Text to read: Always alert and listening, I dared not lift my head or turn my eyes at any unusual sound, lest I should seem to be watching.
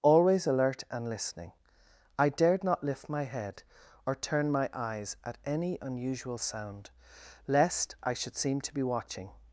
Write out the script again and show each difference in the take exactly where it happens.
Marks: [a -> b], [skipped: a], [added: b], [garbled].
Always alert and listening, I dared not lift my head or turn my eyes at any unusual sound, lest I should seem to be watching.